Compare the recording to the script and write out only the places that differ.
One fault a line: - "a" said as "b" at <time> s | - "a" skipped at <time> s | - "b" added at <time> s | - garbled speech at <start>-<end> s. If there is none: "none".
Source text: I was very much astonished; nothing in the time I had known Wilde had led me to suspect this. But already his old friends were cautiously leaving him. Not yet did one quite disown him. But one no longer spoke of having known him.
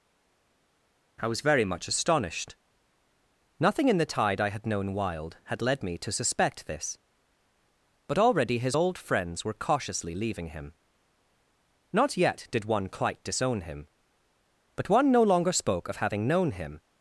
- "time" said as "tide" at 4.1 s